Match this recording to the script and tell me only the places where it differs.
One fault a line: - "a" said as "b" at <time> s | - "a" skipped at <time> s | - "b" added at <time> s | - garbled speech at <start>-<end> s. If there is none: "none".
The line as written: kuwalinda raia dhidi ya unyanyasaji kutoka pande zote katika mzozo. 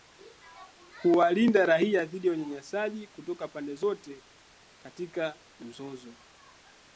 none